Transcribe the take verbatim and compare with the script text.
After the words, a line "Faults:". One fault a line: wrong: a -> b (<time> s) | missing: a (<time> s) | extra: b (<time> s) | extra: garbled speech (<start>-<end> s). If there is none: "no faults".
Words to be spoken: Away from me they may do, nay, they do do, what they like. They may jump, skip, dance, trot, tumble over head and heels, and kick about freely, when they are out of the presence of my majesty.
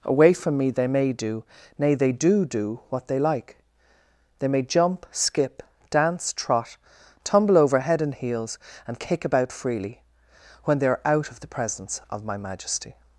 Away from me they may do, nay, they do do, what they like. They may jump, skip, dance, trot, tumble over head and heels, and kick about freely, when they are out of the presence of my majesty.
Faults:
no faults